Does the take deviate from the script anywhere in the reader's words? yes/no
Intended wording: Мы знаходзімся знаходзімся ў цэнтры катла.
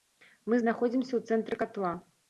yes